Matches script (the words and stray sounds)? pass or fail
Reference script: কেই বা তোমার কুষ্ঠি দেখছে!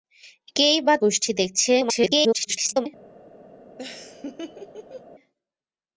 fail